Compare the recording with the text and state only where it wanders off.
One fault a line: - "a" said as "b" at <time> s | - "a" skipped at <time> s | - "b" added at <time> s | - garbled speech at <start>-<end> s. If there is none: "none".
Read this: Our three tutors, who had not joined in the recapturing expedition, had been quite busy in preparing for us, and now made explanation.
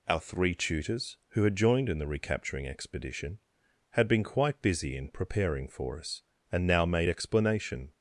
- "not" skipped at 1.6 s